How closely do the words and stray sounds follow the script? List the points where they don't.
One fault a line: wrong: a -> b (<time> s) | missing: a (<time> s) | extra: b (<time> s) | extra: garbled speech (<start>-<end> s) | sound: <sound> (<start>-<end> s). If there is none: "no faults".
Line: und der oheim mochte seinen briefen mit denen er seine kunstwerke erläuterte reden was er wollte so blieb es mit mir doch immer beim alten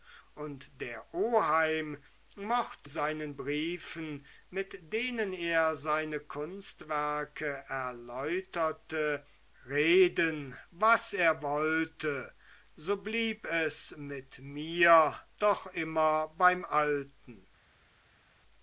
no faults